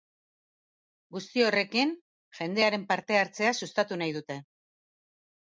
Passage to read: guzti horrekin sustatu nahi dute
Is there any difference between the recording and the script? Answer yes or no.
yes